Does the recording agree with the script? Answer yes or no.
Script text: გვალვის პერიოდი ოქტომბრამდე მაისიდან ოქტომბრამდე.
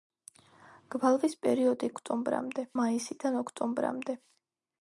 yes